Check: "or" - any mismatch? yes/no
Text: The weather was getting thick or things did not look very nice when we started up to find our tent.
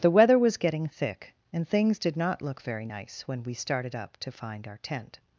yes